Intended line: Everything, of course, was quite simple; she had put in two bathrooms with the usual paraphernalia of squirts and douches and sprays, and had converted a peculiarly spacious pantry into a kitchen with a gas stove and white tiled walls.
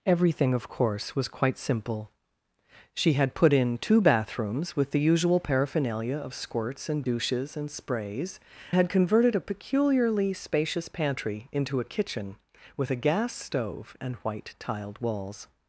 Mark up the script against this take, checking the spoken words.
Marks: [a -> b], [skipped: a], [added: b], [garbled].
Everything, of course, was quite simple; she had put in two bathrooms with the usual paraphernalia of squirts and douches and sprays, [skipped: and] had converted a peculiarly spacious pantry into a kitchen with a gas stove and white tiled walls.